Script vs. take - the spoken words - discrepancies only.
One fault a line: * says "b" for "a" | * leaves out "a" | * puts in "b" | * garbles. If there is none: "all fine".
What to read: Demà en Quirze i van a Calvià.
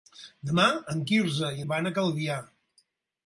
all fine